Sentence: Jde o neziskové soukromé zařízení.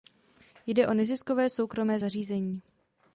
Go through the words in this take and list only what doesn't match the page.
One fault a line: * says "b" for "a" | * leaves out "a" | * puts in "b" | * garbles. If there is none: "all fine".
all fine